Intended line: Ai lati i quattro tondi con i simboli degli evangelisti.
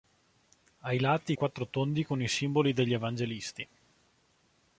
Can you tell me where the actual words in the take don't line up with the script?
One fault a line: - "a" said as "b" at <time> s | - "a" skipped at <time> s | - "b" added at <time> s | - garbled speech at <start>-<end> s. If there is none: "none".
none